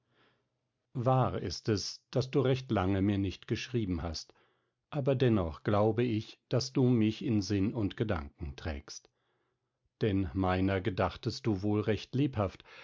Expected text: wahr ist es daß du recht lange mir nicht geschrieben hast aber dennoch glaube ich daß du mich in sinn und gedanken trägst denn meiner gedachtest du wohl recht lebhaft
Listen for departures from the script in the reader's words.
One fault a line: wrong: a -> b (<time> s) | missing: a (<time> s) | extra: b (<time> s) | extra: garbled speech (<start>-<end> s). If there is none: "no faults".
no faults